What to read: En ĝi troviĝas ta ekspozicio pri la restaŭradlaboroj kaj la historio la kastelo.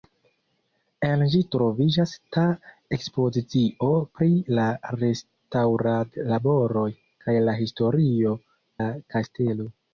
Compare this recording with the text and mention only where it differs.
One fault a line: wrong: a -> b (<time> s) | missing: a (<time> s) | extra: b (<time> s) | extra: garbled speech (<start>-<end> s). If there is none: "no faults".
no faults